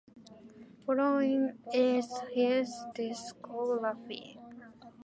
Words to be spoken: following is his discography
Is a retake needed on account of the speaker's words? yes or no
no